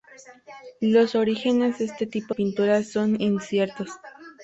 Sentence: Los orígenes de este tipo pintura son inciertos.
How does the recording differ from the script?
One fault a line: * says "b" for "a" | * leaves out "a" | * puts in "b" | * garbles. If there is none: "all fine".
all fine